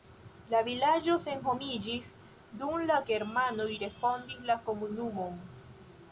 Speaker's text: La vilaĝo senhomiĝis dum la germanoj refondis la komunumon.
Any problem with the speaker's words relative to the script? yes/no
no